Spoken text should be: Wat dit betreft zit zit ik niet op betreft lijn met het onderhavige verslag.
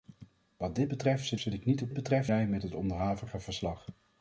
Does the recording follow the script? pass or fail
pass